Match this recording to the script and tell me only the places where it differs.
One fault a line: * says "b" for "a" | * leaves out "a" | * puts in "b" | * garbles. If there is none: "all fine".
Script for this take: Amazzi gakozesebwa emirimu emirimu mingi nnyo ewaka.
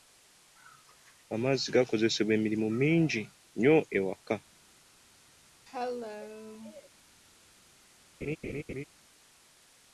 * leaves out "emirimu"